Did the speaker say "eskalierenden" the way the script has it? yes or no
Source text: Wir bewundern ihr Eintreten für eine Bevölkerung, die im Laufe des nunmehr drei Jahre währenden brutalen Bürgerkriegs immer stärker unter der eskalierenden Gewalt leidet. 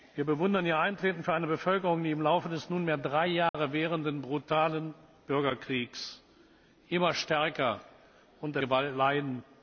no